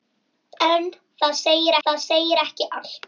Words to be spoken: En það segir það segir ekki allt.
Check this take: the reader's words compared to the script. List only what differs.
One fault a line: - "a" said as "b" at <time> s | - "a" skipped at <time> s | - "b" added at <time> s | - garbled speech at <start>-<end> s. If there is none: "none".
none